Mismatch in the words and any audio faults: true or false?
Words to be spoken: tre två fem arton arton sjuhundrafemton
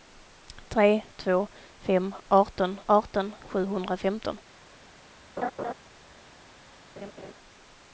true